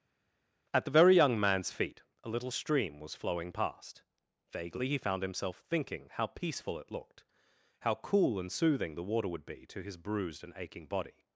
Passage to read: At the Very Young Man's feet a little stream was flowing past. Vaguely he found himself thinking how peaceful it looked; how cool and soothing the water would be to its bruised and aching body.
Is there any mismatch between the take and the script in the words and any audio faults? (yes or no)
yes